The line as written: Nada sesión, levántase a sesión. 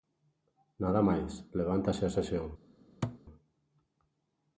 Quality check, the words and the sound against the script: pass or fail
fail